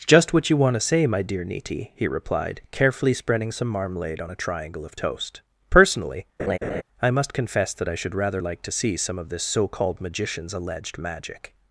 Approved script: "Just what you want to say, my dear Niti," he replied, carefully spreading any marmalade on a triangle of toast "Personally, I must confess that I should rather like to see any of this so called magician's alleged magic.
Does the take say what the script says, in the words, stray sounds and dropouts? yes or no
no